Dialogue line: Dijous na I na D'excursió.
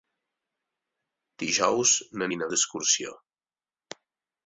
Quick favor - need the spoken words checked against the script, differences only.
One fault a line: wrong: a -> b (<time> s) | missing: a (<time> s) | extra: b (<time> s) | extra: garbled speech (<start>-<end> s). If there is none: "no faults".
no faults